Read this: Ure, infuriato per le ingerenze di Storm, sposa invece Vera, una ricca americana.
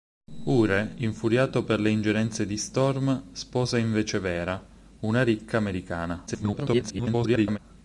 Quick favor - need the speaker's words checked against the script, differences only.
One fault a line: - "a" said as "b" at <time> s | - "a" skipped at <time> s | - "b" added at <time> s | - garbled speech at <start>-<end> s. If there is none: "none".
- garbled speech at 6.3-7.6 s